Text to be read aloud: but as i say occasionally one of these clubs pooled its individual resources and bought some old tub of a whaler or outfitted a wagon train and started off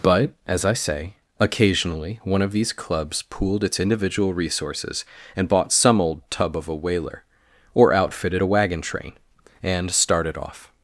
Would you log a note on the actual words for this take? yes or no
no